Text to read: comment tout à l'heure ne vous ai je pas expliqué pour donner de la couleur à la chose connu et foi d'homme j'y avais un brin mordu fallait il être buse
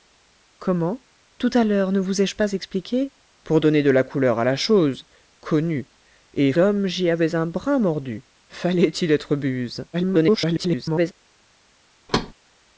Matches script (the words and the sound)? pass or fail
fail